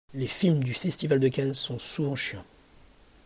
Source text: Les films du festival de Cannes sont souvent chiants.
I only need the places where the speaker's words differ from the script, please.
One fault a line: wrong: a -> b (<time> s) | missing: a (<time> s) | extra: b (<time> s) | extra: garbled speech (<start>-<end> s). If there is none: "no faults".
no faults